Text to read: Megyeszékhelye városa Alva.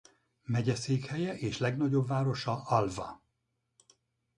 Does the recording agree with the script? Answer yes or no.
no